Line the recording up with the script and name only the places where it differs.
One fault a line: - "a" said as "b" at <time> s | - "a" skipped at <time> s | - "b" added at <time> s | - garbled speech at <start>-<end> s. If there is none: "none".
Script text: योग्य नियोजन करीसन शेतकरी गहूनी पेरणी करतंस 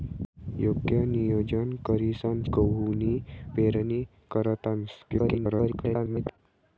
- "शेतकरी" skipped at 2.4 s
- garbled speech at 5.1-6.4 s